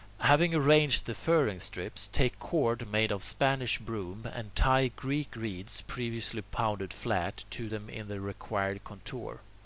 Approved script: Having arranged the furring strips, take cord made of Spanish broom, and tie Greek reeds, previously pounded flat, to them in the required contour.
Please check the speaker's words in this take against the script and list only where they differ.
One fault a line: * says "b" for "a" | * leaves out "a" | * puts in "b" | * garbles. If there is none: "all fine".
all fine